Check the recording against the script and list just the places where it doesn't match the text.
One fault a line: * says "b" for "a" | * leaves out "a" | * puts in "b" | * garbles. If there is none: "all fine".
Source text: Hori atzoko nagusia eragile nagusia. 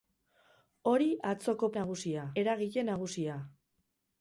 all fine